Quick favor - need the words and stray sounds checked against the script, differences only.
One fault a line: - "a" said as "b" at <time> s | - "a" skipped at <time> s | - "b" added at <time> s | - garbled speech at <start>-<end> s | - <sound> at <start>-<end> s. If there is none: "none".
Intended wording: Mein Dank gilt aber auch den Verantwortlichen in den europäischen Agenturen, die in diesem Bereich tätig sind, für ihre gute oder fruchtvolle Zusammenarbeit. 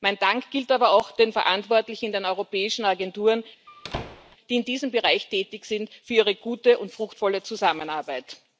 - squeak at 3.7-4.4 s
- "oder" said as "und" at 6.8 s